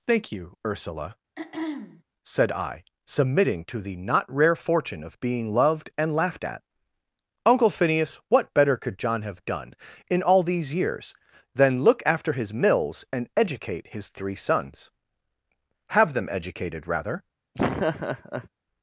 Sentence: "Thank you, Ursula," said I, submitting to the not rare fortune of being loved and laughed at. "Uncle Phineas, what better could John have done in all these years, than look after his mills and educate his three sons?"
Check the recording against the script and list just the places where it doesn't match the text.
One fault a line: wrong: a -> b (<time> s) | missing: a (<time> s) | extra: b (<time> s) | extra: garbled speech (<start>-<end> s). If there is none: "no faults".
extra: Have them educated rather (15.9 s)